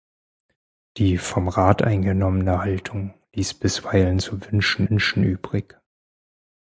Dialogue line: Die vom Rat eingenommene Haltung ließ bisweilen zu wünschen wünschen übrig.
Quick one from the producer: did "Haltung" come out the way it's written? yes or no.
yes